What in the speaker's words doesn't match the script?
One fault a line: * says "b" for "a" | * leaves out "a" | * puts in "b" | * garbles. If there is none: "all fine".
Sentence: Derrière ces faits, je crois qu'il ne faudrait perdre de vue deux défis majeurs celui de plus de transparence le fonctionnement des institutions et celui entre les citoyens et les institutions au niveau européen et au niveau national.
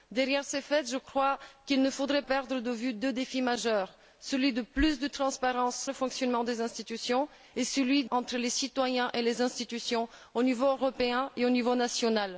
all fine